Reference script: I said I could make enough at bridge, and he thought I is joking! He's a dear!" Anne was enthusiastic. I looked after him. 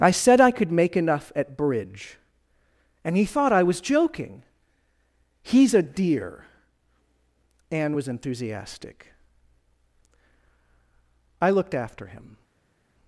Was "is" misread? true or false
true